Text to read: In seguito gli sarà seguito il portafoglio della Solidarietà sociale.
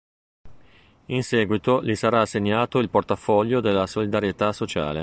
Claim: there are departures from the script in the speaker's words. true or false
true